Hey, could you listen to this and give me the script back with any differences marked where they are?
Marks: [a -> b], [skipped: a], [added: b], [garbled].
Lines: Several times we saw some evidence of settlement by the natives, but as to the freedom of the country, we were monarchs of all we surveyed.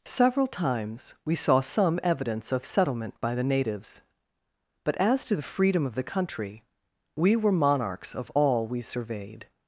Several times we saw some evidence of settlement by the natives, but as to the freedom of the country, we were monarchs of all we surveyed.